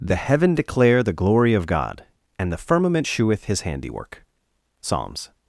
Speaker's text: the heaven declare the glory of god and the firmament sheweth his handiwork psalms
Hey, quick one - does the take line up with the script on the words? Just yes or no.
yes